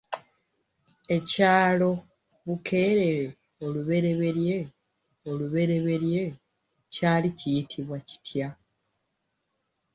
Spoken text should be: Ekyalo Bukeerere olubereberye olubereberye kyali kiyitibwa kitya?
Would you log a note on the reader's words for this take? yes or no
no